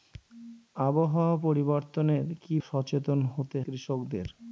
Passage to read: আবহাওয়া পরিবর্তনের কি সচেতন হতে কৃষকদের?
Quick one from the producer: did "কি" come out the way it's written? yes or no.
yes